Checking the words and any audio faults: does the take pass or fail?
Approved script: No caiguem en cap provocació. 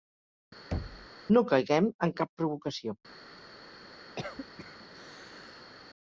fail